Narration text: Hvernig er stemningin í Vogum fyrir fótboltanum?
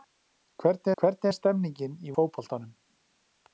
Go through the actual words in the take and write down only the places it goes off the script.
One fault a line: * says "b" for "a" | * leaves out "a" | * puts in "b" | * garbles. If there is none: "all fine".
* puts in "hvernig"
* leaves out "Vogum fyrir"